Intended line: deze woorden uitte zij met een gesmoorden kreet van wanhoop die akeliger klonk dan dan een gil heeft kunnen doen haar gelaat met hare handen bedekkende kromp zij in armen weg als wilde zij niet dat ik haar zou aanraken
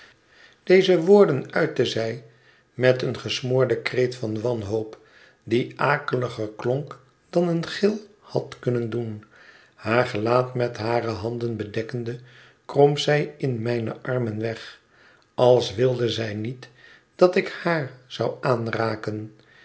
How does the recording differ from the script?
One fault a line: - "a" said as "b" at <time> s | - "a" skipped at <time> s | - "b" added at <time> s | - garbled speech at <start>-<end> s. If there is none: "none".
- "dan" skipped at 7.5 s
- "heeft" said as "had" at 8.2 s
- "mijne" added at 13.6 s